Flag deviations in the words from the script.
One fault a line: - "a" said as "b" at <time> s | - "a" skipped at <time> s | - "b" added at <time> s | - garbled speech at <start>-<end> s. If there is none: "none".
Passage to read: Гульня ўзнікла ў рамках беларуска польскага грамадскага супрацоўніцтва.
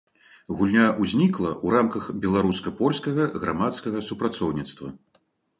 none